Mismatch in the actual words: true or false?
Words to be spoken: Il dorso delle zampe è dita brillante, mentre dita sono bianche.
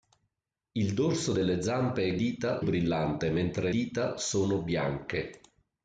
false